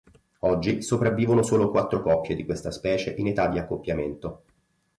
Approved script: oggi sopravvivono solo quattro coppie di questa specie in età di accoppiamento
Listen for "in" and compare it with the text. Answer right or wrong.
right